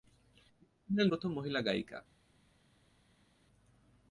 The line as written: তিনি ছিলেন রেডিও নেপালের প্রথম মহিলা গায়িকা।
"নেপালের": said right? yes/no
no